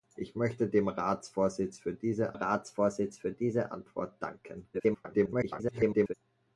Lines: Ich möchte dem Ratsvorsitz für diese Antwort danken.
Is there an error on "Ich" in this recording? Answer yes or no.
no